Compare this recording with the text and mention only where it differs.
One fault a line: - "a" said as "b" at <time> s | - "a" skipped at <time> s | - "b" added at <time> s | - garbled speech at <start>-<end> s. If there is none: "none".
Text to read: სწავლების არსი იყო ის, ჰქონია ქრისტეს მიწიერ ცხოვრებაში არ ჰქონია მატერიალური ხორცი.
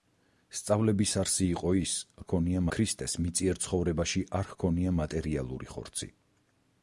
none